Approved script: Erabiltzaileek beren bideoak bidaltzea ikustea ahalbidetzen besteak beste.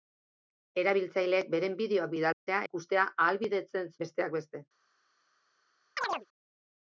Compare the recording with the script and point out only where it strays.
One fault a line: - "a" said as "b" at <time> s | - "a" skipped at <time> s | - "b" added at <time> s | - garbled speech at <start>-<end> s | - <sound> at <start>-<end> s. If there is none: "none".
- dropout at 2.3-2.5 s
- chirp at 6.0-6.3 s